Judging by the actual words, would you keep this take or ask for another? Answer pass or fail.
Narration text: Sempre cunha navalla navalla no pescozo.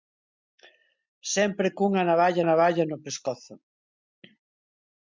pass